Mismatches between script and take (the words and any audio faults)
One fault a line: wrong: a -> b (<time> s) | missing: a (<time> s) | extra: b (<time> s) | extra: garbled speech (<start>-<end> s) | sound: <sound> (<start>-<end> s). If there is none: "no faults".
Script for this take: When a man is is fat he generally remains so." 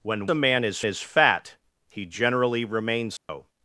sound: dropout (3.2-3.3 s)